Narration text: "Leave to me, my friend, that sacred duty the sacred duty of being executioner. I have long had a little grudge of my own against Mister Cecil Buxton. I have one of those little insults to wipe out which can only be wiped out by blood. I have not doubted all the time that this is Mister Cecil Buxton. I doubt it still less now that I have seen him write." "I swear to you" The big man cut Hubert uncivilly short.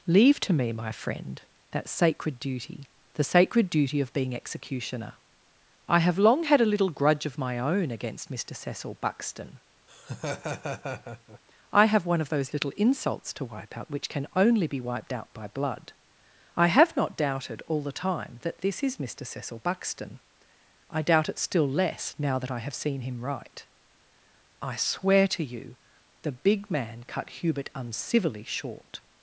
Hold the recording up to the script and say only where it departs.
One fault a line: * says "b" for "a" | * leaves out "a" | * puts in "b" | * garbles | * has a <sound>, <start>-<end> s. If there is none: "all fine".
* has a laugh, 9.9-11.4 s